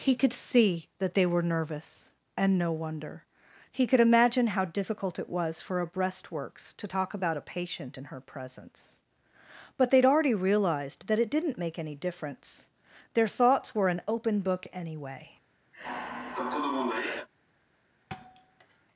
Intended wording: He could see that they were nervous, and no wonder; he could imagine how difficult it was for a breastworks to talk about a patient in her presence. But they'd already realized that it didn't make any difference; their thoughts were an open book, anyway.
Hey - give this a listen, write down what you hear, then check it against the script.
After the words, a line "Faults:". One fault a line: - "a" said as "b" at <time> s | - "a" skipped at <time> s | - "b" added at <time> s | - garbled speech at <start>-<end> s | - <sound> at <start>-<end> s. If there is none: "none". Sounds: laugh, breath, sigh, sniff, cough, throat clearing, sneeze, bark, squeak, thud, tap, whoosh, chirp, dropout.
He could see that they were nervous, and no wonder; he could imagine how difficult it was for a breastworks to talk about a patient in her presence. But they'd already realized that it didn't make any difference; their thoughts were an open book, anyway.
Faults:
- sigh at 15.7-17.3 s
- thud at 18.1-18.9 s